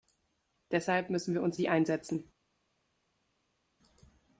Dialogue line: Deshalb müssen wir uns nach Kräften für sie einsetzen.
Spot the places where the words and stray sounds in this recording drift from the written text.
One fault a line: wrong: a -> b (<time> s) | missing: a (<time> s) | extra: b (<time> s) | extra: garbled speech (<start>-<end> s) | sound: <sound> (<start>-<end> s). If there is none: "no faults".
missing: nach Kräften für (1.6 s)